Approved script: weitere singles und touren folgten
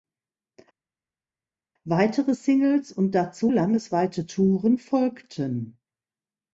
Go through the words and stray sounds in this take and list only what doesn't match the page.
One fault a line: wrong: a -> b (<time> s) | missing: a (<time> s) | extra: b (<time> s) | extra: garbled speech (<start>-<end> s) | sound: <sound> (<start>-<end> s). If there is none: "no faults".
extra: dazu landesweite (3.1 s)